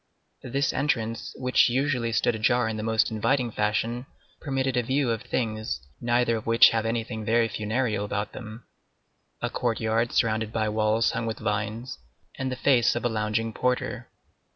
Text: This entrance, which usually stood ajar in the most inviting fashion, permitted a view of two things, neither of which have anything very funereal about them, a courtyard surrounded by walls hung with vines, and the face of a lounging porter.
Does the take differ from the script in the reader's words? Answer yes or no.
yes